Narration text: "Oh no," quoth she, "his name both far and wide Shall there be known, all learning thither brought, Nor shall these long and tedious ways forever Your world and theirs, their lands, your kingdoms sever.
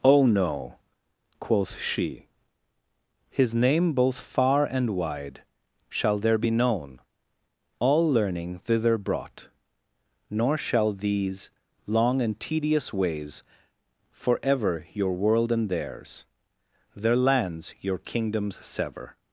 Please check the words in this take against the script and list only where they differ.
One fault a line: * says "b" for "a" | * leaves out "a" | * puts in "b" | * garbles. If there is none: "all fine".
all fine